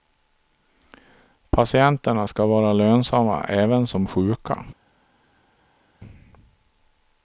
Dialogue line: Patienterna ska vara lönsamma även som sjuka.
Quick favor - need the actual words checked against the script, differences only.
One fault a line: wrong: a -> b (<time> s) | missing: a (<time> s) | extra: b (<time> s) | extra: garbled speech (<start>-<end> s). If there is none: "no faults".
no faults